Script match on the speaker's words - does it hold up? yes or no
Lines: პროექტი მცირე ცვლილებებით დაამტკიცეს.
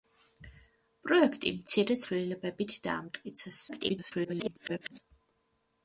no